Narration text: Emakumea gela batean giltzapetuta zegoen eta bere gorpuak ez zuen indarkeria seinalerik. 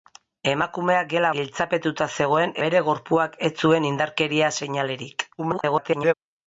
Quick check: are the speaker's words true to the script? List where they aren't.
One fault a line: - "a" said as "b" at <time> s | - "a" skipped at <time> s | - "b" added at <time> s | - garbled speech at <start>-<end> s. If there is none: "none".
- "batean" skipped at 1.3 s
- "eta" skipped at 2.6 s
- garbled speech at 5.4-6.1 s